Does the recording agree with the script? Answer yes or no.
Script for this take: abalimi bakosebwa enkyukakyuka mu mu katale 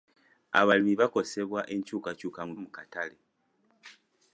yes